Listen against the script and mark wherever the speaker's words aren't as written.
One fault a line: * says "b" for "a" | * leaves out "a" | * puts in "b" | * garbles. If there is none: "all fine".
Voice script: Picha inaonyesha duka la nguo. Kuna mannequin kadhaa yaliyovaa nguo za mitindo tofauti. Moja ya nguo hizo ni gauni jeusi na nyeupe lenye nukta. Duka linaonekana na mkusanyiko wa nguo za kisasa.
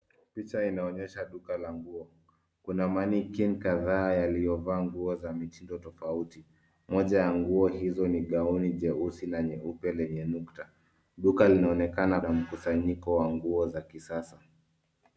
all fine